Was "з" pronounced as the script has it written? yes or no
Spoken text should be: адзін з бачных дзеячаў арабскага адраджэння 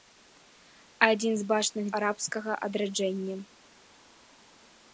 yes